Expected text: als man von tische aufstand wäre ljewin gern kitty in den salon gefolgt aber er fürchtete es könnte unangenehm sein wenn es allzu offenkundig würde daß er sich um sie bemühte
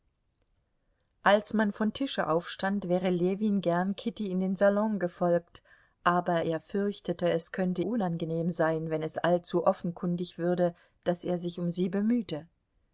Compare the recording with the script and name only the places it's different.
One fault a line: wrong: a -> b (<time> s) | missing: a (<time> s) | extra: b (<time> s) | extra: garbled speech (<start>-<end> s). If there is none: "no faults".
no faults